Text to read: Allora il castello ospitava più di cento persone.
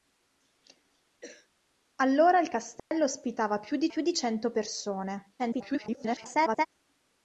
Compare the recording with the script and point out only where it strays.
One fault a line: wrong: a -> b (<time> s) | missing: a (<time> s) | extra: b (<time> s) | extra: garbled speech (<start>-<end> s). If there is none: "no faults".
extra: più di (3.9 s)
extra: garbled speech (5.4-6.7 s)